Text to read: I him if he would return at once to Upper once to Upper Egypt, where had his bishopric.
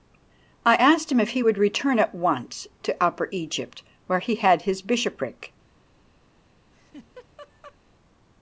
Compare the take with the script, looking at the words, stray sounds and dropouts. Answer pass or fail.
fail